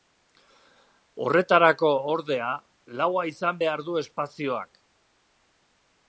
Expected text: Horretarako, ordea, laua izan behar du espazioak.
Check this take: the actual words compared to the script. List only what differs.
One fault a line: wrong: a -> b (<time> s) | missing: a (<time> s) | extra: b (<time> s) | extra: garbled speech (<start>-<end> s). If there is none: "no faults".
no faults